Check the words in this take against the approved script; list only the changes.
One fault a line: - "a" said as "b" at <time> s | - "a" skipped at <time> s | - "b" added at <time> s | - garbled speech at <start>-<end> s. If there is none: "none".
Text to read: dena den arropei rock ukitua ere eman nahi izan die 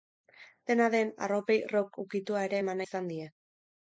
- "nahi" skipped at 2.8 s